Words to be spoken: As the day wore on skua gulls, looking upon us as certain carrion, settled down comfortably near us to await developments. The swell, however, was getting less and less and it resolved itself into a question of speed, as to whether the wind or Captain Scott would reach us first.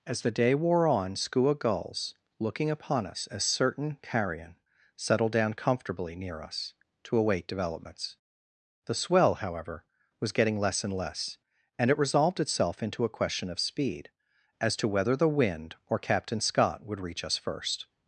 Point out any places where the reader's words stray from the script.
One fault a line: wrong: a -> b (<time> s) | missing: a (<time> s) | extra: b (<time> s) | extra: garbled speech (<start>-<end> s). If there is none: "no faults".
no faults